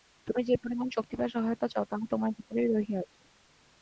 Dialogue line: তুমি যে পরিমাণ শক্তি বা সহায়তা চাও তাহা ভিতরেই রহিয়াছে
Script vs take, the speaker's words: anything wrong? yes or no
yes